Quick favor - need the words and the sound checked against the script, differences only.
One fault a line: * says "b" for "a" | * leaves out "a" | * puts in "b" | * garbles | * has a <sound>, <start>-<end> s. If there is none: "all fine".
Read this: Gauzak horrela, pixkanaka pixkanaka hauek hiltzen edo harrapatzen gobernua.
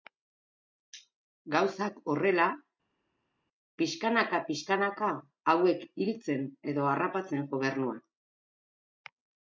all fine